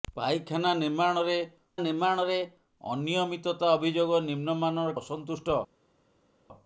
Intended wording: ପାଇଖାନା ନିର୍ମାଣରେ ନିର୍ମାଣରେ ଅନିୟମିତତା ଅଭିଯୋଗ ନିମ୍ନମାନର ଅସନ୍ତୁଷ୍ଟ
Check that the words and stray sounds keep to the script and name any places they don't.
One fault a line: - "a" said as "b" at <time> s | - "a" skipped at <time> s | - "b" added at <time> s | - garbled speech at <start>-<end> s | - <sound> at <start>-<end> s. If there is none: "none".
none